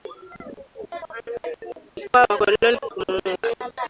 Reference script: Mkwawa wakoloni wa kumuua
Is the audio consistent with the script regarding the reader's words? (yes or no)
yes